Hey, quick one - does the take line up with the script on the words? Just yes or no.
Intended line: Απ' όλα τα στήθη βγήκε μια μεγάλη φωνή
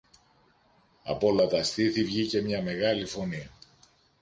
yes